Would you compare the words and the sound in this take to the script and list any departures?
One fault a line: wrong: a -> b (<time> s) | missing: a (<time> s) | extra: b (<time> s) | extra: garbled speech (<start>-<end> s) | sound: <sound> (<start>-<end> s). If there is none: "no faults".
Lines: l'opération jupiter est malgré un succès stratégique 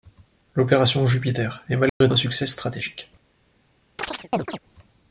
sound: dropout (1.9-2.0 s)
sound: chirp (4.0-4.6 s)